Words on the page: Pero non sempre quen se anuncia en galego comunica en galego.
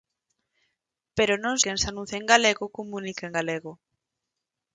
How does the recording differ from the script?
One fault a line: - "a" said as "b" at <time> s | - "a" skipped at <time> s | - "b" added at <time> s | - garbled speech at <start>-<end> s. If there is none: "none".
- "sempre" skipped at 1.6 s